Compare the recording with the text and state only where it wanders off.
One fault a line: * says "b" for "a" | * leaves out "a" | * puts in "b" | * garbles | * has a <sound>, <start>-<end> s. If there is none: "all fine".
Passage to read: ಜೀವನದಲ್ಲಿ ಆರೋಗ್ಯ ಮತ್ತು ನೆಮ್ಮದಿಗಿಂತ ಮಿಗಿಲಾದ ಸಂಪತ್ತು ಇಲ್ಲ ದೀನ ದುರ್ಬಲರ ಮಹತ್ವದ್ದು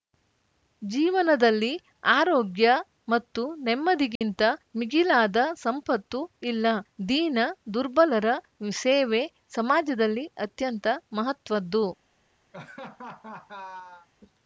* has a dropout, 4.2-4.2 s
* puts in "ಸೇವೆ ಸಮಾಜದಲ್ಲಿ ಅತ್ಯಂತ"
* has a laugh, 12.5-14.1 s